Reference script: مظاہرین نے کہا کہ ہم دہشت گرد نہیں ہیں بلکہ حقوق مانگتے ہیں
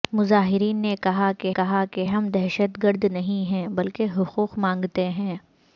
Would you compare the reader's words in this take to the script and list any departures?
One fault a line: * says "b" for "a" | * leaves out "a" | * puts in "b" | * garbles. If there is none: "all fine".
* puts in "کہا کہ"